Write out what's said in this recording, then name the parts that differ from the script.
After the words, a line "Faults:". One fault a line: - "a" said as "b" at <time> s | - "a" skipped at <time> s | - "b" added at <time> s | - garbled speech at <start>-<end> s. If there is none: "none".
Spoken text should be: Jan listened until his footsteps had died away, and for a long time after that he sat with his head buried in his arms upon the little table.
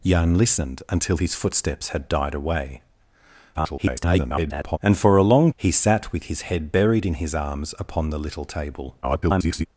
Jan listened until his footsteps had died away, [garbled] and for a long he sat with his head buried in his arms upon the little table. [garbled]
Faults:
- garbled speech at 3.5-4.8 s
- "time after that" skipped at 5.5 s
- garbled speech at 9.0-9.7 s